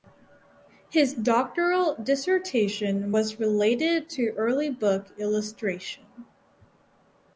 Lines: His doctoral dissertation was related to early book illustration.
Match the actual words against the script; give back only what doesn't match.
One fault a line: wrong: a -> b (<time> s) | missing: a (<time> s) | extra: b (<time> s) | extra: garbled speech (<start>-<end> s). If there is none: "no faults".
no faults